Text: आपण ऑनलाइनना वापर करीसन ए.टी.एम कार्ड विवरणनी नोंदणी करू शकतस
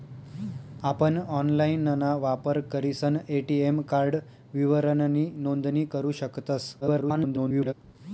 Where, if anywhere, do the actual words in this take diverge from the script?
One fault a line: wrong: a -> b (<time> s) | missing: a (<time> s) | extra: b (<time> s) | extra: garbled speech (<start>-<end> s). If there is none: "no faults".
extra: garbled speech (6.8-7.7 s)